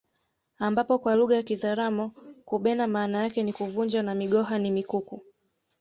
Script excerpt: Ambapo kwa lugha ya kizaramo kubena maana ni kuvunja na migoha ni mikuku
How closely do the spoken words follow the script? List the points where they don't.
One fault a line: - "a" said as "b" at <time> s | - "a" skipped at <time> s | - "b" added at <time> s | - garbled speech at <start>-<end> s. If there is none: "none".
- "yake" added at 3.2 s